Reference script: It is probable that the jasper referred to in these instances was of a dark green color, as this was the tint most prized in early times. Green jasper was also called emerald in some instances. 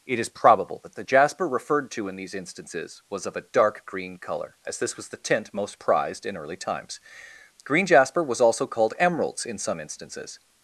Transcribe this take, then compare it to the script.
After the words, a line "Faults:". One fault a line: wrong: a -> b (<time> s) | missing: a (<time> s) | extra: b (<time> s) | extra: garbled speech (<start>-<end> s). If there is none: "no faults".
It is probable that the jasper referred to in these instances was of a dark green color, as this was the tint most prized in early times. Green jasper was also called emeralds in some instances.
Faults:
wrong: emerald -> emeralds (9.0 s)